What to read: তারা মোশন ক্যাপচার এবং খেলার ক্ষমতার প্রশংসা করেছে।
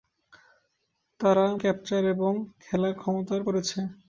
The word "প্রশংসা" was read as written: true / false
false